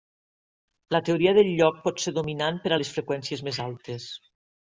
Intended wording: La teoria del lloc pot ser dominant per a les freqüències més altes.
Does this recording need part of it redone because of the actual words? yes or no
no